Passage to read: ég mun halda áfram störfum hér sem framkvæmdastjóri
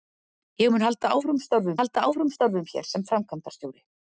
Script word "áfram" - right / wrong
right